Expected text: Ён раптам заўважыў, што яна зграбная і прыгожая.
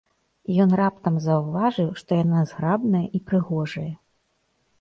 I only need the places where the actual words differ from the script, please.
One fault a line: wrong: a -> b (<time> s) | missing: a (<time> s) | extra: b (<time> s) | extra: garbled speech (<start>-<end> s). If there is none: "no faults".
no faults